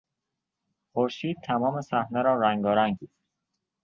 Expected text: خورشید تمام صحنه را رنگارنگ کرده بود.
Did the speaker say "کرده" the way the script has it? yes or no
no